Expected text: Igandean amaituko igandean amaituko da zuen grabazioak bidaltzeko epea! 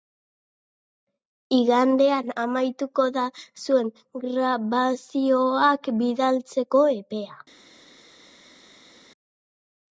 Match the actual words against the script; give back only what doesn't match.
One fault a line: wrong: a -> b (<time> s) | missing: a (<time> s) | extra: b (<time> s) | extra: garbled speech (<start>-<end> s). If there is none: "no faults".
missing: igandean amaituko (3.1 s)